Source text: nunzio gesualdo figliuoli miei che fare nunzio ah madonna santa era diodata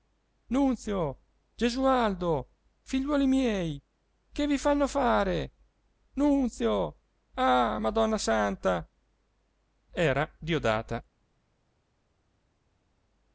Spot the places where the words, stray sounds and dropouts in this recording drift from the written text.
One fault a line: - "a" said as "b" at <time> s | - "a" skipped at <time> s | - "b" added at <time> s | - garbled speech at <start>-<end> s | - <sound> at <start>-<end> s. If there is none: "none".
- "vi fanno" added at 4.5 s